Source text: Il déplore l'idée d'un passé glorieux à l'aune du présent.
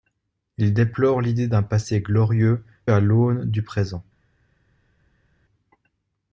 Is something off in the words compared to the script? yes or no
no